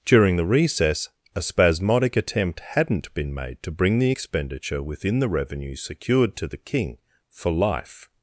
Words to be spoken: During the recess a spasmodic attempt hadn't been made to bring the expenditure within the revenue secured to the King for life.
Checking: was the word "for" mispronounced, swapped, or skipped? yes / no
no